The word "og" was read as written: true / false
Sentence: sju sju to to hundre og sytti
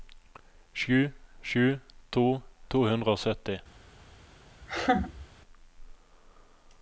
true